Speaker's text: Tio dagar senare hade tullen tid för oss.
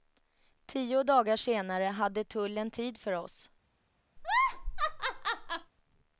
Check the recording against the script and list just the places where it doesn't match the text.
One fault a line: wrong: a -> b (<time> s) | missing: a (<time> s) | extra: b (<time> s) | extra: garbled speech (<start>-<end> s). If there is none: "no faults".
no faults